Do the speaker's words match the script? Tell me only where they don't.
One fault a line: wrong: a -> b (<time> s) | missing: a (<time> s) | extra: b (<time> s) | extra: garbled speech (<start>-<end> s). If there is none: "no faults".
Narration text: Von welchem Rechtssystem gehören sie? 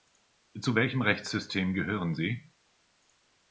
wrong: Von -> Zu (0.6 s)